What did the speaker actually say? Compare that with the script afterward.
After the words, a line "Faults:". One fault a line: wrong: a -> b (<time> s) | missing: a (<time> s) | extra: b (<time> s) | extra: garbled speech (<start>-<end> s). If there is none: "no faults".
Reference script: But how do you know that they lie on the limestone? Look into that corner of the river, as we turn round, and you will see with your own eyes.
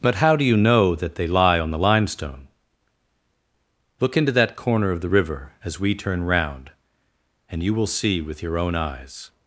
But how do you know that they lie on the limestone? Look into that corner of the river, as we turn round, and you will see with your own eyes.
Faults:
no faults